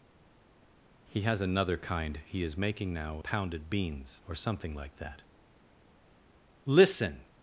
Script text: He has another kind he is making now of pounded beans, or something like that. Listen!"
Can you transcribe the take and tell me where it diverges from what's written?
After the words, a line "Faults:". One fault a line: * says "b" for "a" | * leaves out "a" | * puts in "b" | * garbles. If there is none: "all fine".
He has another kind he is making now pounded beans, or something like that. Listen!"
Faults:
* leaves out "of"